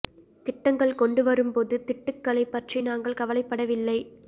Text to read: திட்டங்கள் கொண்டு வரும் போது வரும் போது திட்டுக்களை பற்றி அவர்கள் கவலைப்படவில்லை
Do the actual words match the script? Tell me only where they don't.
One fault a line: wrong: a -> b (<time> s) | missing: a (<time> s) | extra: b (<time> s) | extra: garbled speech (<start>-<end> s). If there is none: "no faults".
missing: வரும் போது (1.8 s)
wrong: அவர்கள் -> நாங்கள் (2.8 s)